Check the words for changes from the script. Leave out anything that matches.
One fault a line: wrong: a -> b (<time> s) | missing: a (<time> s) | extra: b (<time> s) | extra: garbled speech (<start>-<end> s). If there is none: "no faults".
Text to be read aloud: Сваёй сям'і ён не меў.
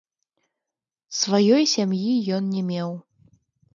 no faults